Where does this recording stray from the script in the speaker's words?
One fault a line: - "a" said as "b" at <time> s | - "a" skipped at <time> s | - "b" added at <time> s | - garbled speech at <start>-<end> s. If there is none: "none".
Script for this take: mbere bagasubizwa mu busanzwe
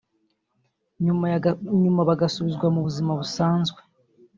- "mbere" said as "nyuma" at 1.8 s
- "buzima" added at 2.9 s